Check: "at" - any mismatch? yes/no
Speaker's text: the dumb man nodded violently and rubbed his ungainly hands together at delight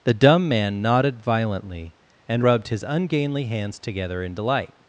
yes